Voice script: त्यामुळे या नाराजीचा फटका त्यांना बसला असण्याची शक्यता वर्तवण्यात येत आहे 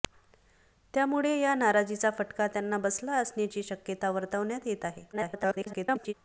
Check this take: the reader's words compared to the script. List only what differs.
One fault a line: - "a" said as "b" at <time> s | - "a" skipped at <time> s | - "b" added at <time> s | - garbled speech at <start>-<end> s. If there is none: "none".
- garbled speech at 5.1-6.1 s